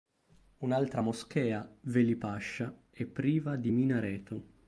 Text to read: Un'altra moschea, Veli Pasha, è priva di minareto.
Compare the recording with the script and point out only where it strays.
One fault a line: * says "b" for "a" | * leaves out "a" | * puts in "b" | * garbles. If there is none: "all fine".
all fine